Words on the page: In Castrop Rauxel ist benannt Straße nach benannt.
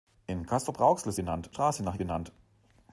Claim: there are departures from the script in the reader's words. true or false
false